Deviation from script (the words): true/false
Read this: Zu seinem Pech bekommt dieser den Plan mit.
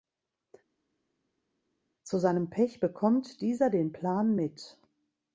false